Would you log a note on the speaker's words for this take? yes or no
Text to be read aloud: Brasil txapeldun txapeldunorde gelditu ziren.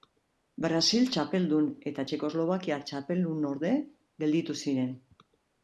yes